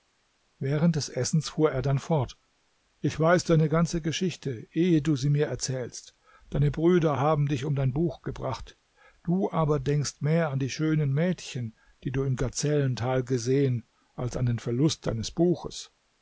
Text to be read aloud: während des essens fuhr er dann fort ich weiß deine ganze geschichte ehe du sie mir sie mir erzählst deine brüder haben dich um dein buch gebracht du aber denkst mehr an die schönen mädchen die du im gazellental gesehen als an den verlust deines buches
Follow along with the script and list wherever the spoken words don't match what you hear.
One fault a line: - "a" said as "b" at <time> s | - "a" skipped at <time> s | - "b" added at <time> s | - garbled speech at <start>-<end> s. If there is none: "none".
- "sie mir" skipped at 5.5 s